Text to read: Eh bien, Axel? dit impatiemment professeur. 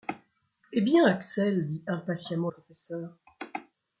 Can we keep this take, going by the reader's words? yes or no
yes